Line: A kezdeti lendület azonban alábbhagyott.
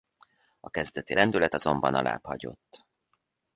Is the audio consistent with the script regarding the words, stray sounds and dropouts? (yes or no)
yes